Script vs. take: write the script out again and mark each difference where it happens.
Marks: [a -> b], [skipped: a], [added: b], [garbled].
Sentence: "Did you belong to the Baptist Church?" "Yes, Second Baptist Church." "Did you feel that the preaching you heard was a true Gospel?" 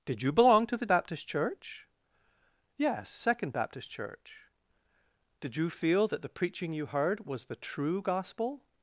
"Did you belong to the Baptist Church?" "Yes, Second Baptist Church." "Did you feel that the preaching you heard was [a -> the] true Gospel?"